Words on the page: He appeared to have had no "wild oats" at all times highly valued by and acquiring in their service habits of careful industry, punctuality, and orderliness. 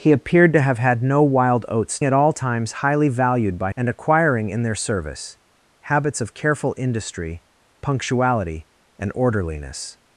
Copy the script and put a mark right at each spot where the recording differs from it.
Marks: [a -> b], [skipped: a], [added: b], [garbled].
He appeared to have had no "wild oats" at all times highly valued by and acquiring in their service habits of careful industry, punctuality, and orderliness.